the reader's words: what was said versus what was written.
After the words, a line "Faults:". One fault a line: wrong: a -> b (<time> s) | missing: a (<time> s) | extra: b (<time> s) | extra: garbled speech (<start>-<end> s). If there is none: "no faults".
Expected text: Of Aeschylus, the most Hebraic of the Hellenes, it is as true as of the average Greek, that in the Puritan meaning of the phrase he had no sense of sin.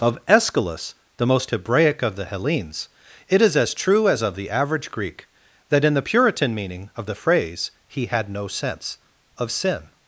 Of Aeschylus, the most Hebraic of the Hellenes, it is as true as of the average Greek, that in the Puritan meaning of the phrase he had no sense of sin.
Faults:
no faults